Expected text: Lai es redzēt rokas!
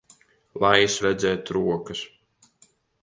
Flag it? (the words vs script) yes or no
no